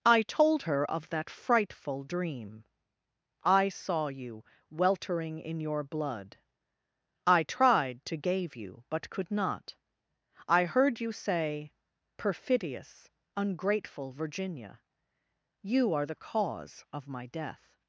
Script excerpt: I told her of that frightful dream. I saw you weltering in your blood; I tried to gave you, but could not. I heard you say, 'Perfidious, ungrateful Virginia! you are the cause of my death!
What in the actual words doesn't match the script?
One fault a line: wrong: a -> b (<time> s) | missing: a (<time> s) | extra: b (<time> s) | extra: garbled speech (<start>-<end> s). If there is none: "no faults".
no faults